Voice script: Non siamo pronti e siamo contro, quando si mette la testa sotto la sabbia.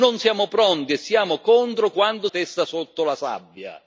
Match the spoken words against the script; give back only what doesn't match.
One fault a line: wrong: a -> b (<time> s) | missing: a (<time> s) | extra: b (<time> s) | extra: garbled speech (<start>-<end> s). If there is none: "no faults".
missing: si mette la (2.3 s)